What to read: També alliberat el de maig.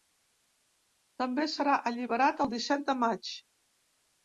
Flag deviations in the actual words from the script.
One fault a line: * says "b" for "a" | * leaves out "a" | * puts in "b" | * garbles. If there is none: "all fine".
* puts in "serà"
* puts in "disset"